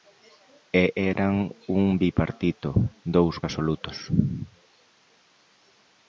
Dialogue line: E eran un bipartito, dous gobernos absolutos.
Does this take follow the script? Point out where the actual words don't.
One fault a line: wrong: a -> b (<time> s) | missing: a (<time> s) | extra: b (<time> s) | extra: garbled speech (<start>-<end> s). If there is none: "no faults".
missing: gobernos (3.4 s)